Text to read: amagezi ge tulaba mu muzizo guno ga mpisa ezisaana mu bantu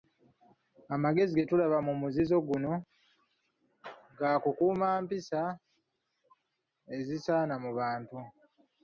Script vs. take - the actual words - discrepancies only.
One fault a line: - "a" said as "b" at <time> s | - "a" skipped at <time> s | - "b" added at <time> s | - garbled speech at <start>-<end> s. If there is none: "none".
- "kukuuma" added at 4.4 s